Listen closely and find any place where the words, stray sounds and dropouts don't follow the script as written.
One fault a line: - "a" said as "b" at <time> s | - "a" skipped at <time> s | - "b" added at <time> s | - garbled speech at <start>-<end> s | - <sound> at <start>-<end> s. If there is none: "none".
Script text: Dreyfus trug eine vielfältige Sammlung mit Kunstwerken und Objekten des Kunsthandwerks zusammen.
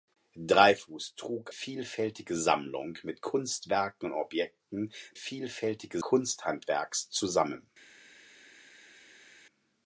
- "eine" skipped at 1.5 s
- "des" said as "vielfältige" at 5.1 s